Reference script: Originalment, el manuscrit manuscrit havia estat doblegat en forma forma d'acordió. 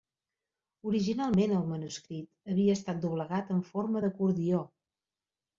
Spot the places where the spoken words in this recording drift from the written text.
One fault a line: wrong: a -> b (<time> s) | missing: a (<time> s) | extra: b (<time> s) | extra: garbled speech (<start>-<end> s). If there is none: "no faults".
missing: manuscrit (2.5 s)
missing: forma (4.0 s)